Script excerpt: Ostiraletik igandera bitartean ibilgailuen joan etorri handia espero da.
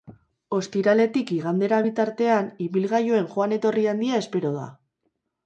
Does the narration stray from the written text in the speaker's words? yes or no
no